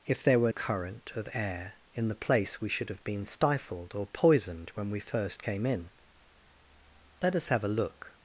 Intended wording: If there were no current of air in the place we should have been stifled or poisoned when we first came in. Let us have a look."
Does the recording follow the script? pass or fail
fail